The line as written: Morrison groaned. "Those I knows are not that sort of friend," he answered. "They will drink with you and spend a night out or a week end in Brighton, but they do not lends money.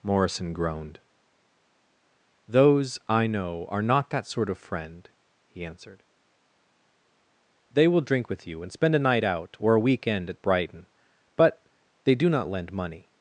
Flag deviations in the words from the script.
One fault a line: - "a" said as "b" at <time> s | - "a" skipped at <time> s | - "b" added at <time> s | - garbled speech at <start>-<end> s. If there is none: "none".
- "knows" said as "know" at 3.3 s
- "in" said as "at" at 10.3 s
- "lends" said as "lend" at 12.5 s